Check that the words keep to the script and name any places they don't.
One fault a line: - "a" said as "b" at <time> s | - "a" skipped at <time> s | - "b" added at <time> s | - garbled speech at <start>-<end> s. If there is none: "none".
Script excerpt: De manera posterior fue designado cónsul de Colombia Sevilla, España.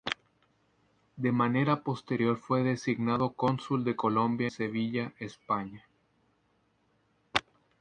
none